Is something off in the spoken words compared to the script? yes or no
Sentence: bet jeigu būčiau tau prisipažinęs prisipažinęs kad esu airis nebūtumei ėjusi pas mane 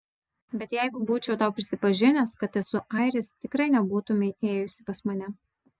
yes